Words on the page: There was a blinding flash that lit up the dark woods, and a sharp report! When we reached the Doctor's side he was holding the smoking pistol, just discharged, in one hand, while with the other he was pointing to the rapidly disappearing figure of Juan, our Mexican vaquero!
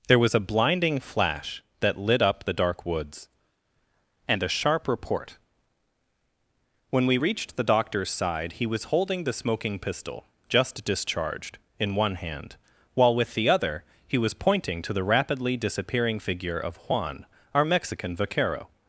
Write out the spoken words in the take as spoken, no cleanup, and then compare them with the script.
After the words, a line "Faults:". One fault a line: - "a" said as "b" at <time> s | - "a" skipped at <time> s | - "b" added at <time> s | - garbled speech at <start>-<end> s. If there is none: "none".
There was a blinding flash that lit up the dark woods, and a sharp report! When we reached the Doctor's side he was holding the smoking pistol, just discharged, in one hand, while with the other he was pointing to the rapidly disappearing figure of Juan, our Mexican vaquero!
Faults:
none